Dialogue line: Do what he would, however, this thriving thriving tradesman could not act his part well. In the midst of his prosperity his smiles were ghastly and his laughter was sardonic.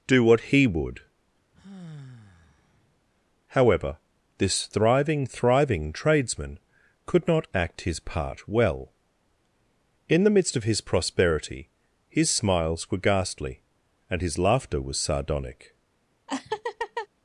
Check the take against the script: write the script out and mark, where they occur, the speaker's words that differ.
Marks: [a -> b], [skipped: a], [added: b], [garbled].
Do what he would, however, this thriving thriving tradesman could not act his part well. In the midst of his prosperity his smiles were ghastly and his laughter was sardonic.